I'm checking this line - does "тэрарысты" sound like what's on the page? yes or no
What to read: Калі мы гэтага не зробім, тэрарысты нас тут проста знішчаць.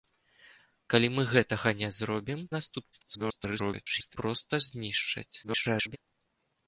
no